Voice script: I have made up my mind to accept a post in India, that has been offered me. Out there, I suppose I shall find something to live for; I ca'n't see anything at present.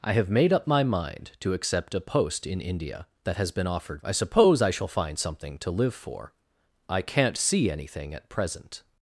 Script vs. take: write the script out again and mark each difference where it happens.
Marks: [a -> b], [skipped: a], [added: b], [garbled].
I have made up my mind to accept a post in India, that has been offered [skipped: me. Out there,] I suppose I shall find something to live for; I ca'n't see anything at present.